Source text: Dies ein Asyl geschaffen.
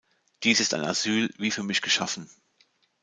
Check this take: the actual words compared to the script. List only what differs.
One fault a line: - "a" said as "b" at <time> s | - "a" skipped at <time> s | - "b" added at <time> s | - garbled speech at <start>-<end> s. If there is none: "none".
- "ist" added at 0.6 s
- "wie für mich" added at 1.4 s